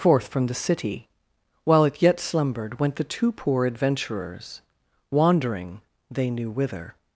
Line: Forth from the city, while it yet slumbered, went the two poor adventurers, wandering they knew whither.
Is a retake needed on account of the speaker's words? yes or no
no